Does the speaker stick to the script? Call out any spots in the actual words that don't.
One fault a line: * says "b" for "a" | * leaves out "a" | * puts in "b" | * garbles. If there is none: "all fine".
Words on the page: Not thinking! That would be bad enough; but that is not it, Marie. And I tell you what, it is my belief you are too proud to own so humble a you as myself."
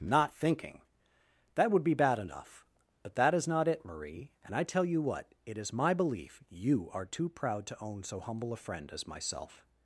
* says "friend" for "you"